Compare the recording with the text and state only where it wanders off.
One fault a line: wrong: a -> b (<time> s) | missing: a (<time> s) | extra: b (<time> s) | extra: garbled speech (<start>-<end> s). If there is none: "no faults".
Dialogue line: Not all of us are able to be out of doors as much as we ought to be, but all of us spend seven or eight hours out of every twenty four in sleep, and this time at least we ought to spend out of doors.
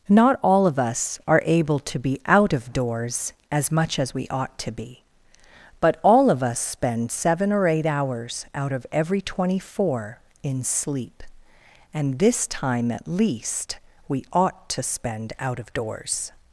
no faults